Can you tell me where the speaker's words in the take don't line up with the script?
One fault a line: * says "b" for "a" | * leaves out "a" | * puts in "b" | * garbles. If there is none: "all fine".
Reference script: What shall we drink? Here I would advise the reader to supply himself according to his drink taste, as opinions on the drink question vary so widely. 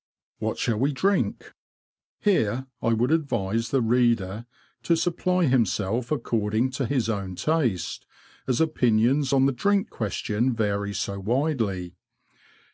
* says "own" for "drink"